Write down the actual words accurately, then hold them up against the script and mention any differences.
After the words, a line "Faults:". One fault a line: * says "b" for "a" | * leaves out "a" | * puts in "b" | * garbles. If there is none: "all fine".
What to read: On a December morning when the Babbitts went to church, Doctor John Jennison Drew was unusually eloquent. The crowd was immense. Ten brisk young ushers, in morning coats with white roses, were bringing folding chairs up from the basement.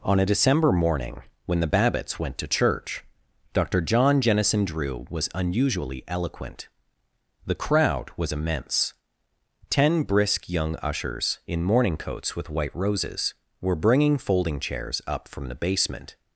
On a December morning when the Babbitts went to church, Doctor John Jennison Drew was unusually eloquent. The crowd was immense. Ten brisk young ushers, in morning coats with white roses, were bringing folding chairs up from the basement.
Faults:
all fine